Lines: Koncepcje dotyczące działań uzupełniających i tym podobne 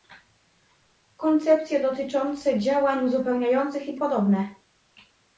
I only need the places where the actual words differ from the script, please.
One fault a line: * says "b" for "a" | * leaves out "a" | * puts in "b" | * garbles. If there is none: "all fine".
* leaves out "tym"